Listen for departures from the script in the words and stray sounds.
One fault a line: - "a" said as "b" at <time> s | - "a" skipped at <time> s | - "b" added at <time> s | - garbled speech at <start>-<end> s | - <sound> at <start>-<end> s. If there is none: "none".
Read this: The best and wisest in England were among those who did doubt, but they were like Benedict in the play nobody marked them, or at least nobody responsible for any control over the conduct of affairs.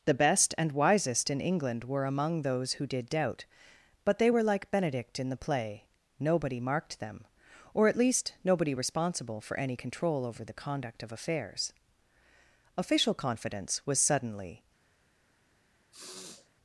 - "Official confidence was suddenly" added at 12.7 s
- sniff at 15.9-16.5 s